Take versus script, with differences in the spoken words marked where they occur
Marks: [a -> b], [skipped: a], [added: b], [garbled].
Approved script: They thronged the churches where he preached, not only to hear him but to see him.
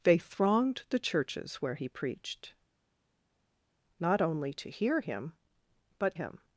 They thronged the churches where he preached, not only to hear him but [skipped: to see] him.